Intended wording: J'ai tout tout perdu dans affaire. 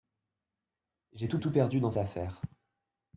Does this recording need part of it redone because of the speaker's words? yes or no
no